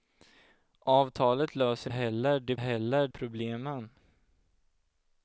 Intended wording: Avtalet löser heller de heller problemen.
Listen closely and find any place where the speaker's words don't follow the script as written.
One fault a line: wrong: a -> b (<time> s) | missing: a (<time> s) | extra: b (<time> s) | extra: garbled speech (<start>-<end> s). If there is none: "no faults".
no faults